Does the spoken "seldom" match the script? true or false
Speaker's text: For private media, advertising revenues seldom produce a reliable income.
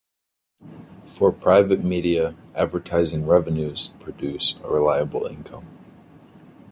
false